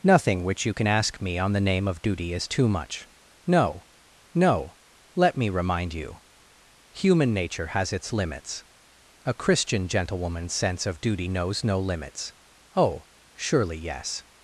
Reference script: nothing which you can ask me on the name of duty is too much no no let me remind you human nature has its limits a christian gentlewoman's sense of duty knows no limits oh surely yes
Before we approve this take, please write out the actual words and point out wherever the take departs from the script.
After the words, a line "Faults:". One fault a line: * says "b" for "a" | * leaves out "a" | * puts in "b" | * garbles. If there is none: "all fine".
nothing which you can ask me on the name of duty is too much no no let me remind you human nature has its limits a christian gentlewoman's sense of duty knows no limits oh surely yes
Faults:
all fine